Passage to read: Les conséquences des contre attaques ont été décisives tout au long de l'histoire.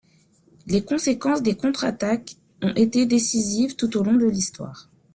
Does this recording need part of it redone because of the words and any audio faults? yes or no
no